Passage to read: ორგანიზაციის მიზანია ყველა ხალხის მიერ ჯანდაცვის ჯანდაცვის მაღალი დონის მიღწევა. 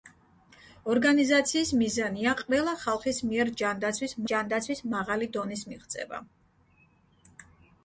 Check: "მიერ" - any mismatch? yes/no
no